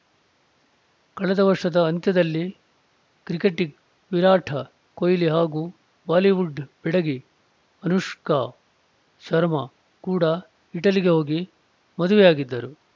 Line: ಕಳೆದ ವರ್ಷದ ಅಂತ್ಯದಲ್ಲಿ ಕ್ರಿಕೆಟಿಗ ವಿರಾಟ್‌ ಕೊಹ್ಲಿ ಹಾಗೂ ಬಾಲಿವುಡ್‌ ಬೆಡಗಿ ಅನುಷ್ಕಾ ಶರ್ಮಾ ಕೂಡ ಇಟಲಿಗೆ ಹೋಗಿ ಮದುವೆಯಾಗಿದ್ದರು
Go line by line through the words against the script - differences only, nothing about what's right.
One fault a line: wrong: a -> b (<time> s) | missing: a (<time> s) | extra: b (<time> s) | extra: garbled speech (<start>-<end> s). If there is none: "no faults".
no faults